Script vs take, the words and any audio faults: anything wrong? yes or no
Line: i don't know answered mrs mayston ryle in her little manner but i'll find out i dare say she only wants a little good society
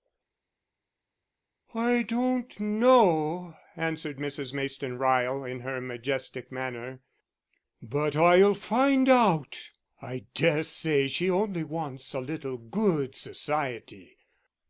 yes